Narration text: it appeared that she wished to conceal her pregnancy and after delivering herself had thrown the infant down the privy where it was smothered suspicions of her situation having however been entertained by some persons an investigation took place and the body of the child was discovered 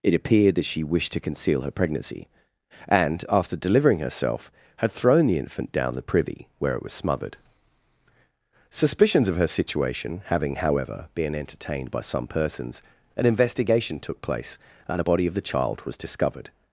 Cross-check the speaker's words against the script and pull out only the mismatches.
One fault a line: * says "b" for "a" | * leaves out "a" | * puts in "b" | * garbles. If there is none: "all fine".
* says "a" for "the"